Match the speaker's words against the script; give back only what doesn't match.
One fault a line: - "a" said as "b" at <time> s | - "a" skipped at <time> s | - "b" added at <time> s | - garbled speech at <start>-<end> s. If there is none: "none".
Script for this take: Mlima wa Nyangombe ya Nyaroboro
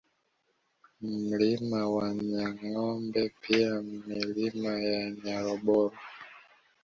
- "pia Milima" added at 3.4 s